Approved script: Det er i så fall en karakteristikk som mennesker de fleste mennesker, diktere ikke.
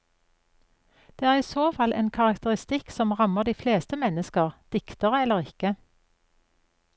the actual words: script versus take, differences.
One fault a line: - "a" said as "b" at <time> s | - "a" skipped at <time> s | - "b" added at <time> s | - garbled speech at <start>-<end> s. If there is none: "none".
- "mennesker" said as "rammer" at 3.2 s
- "eller" added at 5.2 s